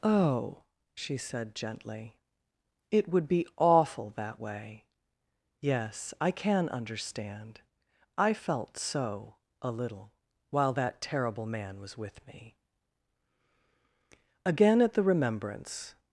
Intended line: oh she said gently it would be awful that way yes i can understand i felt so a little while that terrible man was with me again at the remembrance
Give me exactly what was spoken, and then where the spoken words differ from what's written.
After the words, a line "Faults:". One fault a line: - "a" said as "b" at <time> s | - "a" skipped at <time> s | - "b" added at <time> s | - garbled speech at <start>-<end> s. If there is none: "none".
oh she said gently it would be awful that way yes i can understand i felt so a little while that terrible man was with me again at the remembrance
Faults:
none